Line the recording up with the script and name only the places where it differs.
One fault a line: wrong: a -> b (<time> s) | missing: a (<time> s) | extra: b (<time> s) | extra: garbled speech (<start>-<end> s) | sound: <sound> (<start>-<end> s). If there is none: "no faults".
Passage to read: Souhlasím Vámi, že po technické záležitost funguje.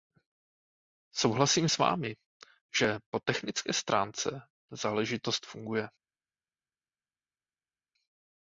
extra: s (1.7 s)
extra: stránce (3.7 s)